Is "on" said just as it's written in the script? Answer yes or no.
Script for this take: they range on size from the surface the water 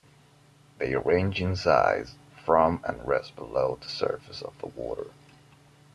no